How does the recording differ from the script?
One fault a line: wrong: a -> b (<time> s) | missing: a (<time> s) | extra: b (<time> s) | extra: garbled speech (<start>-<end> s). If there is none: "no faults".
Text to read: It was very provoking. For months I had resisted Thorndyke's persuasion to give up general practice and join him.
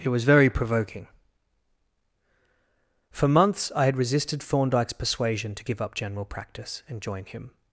no faults